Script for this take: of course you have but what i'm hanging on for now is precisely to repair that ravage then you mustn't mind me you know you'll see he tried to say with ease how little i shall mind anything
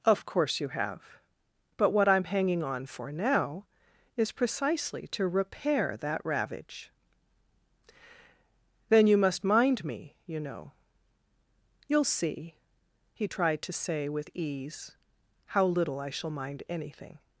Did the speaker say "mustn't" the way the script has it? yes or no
no